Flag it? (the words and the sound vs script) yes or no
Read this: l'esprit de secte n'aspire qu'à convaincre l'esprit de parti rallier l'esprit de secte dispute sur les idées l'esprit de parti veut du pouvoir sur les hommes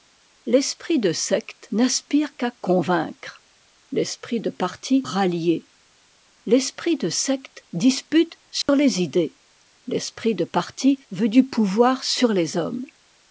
yes